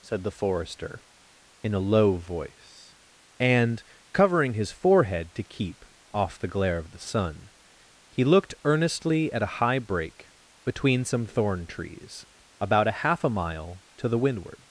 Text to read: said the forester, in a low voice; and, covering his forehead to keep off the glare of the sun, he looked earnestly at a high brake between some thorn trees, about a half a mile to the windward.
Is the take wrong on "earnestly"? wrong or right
right